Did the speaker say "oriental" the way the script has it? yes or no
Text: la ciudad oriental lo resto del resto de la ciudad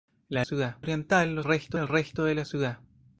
yes